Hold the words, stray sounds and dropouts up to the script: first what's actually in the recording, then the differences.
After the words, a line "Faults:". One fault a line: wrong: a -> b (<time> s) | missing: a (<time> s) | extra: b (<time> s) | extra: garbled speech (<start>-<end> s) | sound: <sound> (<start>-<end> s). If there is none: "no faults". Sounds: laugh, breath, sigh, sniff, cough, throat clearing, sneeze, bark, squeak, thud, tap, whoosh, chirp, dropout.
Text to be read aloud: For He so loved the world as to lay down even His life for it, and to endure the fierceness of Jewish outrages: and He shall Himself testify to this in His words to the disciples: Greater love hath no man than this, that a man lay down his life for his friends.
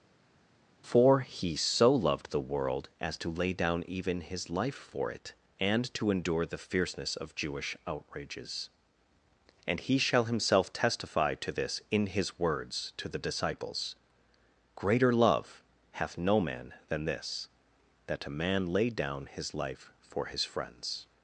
For He so loved the world as to lay down even His life for it, and to endure the fierceness of Jewish outrages: and He shall Himself testify to this in His words to the disciples: Greater love hath no man than this, that a man lay down his life for his friends.
Faults:
no faults